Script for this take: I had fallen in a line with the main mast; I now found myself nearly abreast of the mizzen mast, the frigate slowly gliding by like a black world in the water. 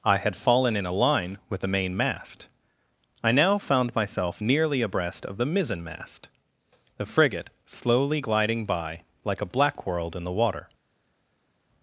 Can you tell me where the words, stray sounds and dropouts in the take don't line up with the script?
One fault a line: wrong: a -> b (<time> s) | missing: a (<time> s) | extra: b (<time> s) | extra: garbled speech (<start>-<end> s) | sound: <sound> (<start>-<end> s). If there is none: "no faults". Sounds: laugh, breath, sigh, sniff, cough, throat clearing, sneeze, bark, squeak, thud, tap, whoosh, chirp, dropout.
no faults